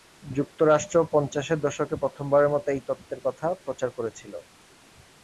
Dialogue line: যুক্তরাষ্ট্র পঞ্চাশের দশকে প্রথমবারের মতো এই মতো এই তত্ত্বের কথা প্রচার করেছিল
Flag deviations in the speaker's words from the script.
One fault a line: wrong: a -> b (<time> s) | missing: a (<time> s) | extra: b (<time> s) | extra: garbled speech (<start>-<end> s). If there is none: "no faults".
missing: মতো এই (2.8 s)